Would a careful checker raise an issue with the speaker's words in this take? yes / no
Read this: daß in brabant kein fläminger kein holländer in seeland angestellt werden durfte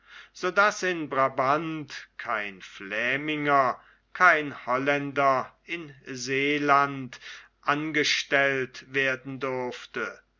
no